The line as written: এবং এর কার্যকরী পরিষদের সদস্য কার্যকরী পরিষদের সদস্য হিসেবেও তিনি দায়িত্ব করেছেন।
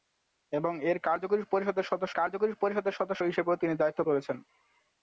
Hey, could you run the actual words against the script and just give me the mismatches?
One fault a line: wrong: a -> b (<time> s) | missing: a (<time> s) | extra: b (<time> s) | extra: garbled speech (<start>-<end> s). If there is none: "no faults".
no faults